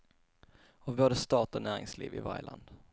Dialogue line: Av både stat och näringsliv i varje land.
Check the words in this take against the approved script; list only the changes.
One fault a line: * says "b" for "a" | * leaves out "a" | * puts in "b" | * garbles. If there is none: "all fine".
all fine